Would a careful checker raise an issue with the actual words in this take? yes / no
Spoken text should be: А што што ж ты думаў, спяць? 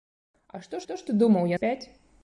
no